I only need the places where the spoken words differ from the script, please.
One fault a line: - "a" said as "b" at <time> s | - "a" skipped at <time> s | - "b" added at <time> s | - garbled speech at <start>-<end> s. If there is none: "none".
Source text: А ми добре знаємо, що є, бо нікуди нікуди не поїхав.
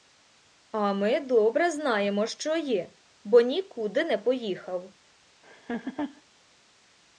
- "нікуди" skipped at 4.0 s